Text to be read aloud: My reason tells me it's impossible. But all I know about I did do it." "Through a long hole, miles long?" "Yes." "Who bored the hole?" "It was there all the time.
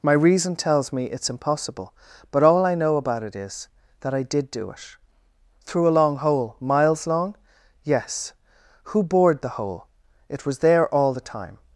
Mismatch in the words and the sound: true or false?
true